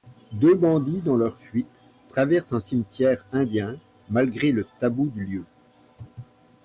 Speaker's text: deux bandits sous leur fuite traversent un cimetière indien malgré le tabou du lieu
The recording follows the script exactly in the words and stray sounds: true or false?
false